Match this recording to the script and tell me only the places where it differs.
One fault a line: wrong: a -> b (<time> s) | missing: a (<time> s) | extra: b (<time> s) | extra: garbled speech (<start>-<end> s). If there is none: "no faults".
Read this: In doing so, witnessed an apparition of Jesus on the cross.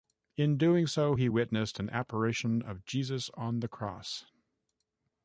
extra: he (1.1 s)